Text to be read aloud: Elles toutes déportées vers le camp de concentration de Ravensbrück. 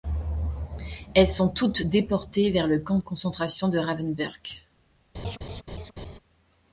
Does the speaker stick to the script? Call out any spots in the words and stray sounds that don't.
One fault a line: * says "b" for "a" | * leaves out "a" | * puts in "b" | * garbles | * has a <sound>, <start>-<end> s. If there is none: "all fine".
* puts in "sont"
* has a laugh, 5.1-6.2 s